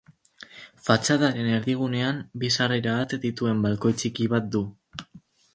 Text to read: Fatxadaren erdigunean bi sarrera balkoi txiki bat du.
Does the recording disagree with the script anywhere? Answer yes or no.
yes